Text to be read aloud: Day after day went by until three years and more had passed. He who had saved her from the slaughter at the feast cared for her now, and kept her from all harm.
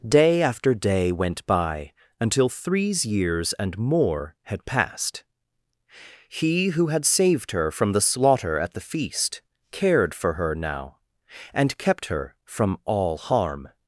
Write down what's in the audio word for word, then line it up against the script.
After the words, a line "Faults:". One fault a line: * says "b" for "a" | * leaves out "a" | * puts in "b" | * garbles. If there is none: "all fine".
Day after day went by until threes years and more had passed. He who had saved her from the slaughter at the feast cared for her now, and kept her from all harm.
Faults:
* says "threes" for "three"